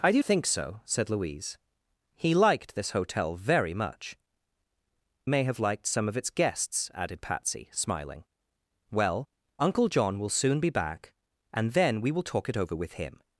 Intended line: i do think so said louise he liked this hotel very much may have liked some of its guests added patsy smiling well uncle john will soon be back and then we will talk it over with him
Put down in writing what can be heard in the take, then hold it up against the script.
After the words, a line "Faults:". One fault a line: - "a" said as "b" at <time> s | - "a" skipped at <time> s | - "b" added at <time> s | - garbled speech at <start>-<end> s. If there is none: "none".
i do think so said louise he liked this hotel very much may have liked some of its guests added patsy smiling well uncle john will soon be back and then we will talk it over with him
Faults:
none